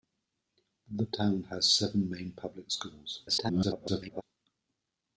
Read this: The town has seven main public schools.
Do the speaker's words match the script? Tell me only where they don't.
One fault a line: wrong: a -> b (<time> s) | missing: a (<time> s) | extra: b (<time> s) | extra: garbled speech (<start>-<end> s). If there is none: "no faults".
extra: garbled speech (3.3-4.2 s)